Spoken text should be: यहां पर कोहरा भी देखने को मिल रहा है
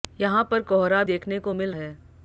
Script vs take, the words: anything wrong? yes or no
yes